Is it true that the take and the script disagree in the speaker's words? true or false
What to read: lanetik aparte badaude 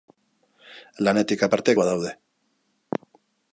false